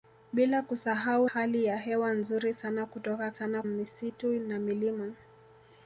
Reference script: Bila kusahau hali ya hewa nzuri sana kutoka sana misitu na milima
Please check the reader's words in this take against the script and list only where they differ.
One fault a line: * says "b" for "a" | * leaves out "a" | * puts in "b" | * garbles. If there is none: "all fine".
all fine